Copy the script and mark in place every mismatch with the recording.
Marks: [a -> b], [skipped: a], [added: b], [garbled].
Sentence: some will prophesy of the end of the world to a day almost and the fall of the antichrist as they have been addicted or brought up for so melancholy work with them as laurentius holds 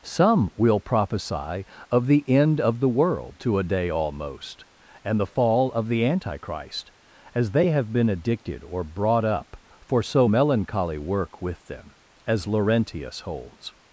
some will prophesy of the end of the world to a day almost and the fall of the antichrist as they have been addicted or brought up for so melancholy work with them as laurentius holds